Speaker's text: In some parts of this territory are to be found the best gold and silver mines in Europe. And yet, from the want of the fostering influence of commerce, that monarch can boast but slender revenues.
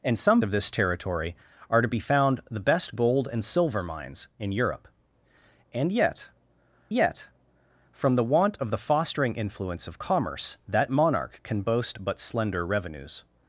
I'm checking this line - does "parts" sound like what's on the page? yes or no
no